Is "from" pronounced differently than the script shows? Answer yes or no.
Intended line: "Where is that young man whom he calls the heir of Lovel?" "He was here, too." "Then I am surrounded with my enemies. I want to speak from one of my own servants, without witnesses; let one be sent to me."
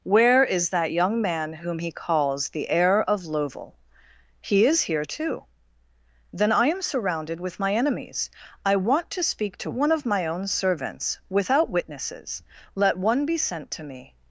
yes